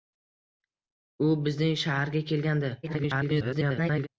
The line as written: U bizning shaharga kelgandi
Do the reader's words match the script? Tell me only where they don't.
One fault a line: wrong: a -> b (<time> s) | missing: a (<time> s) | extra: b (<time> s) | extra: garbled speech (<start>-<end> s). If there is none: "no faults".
extra: garbled speech (2.8-4.1 s)